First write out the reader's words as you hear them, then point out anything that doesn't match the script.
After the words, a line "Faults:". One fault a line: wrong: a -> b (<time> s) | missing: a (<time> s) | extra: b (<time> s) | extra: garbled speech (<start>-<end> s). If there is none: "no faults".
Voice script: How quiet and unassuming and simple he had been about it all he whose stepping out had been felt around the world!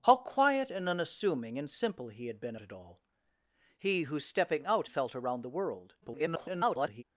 How quiet and unassuming and simple he had been it all he whose stepping out felt around the world! [garbled]
Faults:
missing: about (2.5 s)
missing: had been (4.9 s)
extra: garbled speech (6.0-7.0 s)